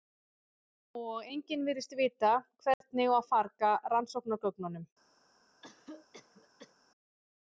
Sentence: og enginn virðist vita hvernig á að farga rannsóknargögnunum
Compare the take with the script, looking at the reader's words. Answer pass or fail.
pass